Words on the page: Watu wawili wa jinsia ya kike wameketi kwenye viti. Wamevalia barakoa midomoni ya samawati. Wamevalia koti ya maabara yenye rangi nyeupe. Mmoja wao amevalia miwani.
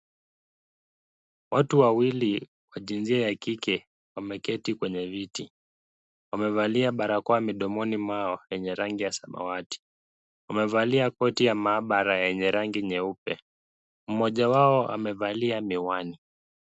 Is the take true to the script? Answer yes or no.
no